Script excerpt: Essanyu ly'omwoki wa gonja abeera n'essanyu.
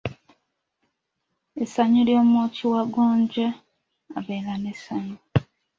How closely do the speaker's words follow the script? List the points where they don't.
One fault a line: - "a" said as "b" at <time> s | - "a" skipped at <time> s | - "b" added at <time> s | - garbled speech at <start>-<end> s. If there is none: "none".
none